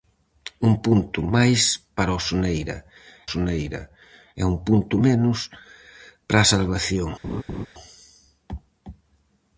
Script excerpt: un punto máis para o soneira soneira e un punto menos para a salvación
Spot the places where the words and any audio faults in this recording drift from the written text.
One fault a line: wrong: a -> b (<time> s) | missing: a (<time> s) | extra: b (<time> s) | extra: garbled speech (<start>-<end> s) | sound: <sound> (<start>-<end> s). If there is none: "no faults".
sound: laugh (7.2-7.7 s)